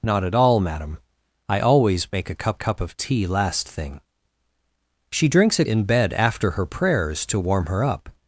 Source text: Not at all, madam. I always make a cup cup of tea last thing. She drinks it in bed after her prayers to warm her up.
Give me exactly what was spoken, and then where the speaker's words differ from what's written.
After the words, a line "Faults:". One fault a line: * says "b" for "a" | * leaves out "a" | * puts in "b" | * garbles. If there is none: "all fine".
Not at all, madam. I always make a cup cup of tea last thing. She drinks it in bed after her prayers to warm her up.
Faults:
all fine